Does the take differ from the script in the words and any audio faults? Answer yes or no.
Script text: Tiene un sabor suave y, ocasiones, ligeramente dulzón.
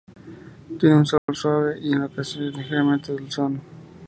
yes